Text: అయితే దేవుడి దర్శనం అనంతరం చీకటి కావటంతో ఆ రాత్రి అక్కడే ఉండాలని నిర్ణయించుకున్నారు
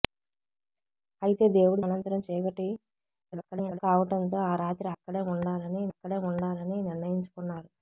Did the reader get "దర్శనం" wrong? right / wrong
wrong